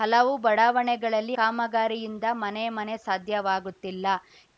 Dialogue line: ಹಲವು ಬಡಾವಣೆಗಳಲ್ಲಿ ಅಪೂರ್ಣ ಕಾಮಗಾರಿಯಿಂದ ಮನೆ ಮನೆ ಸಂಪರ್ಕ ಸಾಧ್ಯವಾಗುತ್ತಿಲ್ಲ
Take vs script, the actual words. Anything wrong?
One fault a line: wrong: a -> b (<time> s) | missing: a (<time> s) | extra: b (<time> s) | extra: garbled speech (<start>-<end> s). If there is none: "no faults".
missing: ಅಪೂರ್ಣ (1.4 s)
missing: ಸಂಪರ್ಕ (3.0 s)